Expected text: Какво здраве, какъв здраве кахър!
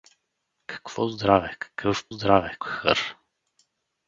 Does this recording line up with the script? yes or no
yes